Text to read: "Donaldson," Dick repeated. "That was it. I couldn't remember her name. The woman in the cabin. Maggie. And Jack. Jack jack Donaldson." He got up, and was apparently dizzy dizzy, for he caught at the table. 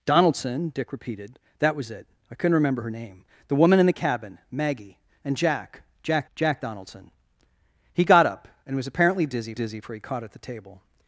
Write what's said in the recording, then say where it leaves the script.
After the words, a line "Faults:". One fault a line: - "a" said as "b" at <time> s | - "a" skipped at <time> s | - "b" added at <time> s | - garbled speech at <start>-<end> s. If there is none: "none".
"Donaldson," Dick repeated. "That was it. I couldn't remember her name. The woman in the cabin. Maggie. And Jack. Jack jack Donaldson." He got up, and was apparently dizzy dizzy, for he caught at the table.
Faults:
none